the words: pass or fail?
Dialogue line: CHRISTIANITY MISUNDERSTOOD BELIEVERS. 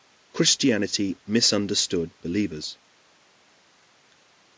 pass